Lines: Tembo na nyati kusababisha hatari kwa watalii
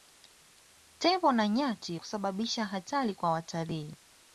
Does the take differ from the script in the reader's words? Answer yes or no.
no